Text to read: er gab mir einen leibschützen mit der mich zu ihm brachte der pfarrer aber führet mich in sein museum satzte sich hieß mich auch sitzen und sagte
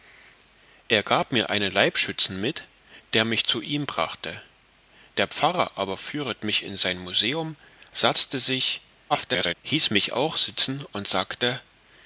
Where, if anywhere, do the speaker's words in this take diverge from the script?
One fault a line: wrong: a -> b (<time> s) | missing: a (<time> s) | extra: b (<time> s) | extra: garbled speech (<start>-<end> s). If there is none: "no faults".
extra: garbled speech (9.1-9.5 s)